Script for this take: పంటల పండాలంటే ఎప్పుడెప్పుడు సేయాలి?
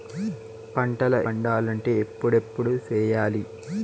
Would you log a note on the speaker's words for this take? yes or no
no